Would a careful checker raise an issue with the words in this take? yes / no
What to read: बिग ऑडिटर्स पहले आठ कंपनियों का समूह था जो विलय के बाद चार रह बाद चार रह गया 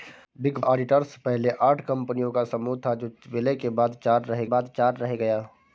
no